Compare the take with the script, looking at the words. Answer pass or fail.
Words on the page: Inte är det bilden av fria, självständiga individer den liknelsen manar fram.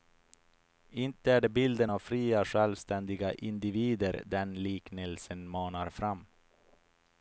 pass